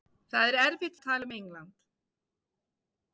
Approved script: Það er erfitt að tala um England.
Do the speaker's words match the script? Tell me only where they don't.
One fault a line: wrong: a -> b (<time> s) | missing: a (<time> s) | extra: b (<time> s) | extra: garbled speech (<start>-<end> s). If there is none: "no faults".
no faults